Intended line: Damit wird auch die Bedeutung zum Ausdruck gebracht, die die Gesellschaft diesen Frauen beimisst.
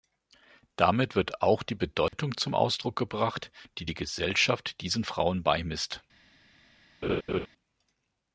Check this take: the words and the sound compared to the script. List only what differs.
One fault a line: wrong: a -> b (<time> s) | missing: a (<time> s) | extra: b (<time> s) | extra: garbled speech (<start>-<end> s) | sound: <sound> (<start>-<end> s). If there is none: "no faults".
sound: dropout (2.1-2.1 s)
sound: laugh (7.0-7.5 s)